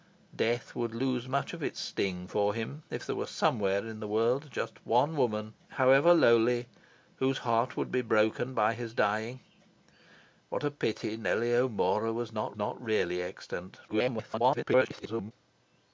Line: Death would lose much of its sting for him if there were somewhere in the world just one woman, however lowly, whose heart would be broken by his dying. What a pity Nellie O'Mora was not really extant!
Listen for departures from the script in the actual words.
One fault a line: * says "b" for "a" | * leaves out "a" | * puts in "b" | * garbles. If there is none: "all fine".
* puts in "not"
* garbles